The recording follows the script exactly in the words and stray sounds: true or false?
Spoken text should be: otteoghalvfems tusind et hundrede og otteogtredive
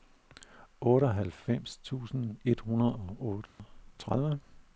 false